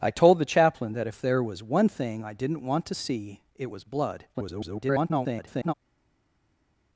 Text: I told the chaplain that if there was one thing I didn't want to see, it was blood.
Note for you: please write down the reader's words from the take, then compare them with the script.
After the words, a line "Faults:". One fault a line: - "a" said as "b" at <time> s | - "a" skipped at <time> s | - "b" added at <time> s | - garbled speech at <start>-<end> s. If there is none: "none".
I told the chaplain that if there was one thing I didn't want to see, it was blood. [garbled]
Faults:
- garbled speech at 4.3-5.7 s